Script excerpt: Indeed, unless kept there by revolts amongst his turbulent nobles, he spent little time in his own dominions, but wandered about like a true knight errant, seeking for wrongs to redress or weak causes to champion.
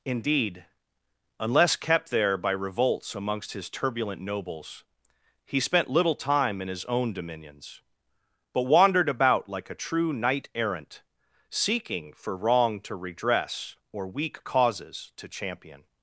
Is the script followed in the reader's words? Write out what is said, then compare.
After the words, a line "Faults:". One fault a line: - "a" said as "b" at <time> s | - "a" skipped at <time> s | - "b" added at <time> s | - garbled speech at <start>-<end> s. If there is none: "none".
Indeed, unless kept there by revolts amongst his turbulent nobles, he spent little time in his own dominions, but wandered about like a true knight errant, seeking for wrong to redress or weak causes to champion.
Faults:
- "wrongs" said as "wrong" at 12.4 s